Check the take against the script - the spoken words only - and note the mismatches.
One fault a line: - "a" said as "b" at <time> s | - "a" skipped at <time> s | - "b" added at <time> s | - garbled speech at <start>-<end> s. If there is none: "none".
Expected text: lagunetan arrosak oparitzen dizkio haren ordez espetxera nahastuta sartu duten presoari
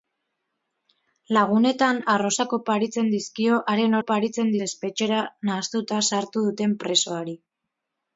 - "ordez" said as "oparitzen" at 4.0 s